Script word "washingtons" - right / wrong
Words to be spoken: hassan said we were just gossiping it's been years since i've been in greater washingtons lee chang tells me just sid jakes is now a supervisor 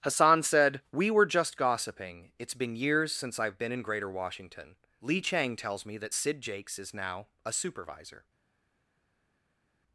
wrong